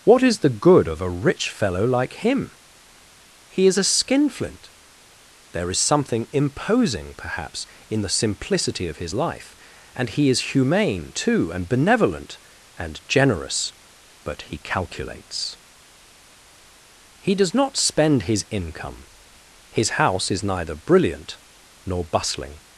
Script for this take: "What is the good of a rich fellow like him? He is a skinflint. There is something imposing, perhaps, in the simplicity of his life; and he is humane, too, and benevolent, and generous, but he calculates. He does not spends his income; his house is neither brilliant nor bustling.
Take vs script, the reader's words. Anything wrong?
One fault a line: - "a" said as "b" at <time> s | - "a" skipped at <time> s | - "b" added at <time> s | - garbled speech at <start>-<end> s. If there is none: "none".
- "spends" said as "spend" at 17.7 s